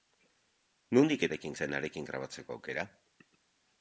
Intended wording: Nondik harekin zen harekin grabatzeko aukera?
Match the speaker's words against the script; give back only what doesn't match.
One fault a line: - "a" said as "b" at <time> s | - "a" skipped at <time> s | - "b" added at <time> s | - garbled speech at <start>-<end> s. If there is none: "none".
none